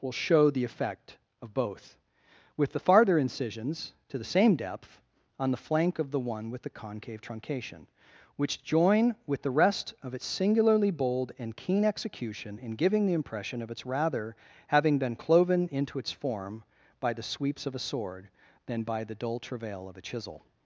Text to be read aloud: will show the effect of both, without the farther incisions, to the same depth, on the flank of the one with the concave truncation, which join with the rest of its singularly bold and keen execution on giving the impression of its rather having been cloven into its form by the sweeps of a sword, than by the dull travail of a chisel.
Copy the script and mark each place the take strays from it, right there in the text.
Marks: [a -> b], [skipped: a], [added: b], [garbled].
will show the effect of both, [without -> with] the farther incisions, to the same depth, on the flank of the one with the concave truncation, which join with the rest of its singularly bold and keen execution [on -> in] giving the impression of its rather having been cloven into its form by the sweeps of a sword, than by the dull travail of a chisel.